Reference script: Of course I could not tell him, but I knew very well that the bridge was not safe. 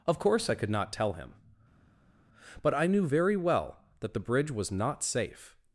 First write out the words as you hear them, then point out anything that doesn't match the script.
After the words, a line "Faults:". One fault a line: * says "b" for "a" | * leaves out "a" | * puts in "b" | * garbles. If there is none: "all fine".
Of course I could not tell him, but I knew very well that the bridge was not safe.
Faults:
all fine